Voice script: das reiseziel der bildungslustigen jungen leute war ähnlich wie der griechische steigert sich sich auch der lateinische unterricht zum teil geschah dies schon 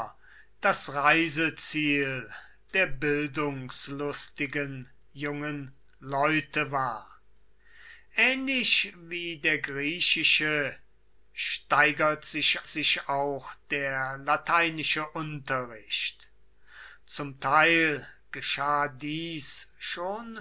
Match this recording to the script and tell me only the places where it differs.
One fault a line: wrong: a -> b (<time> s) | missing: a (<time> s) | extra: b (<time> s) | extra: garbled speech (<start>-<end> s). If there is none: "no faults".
no faults